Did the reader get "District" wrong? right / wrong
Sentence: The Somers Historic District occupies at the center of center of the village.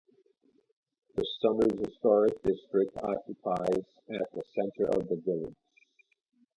right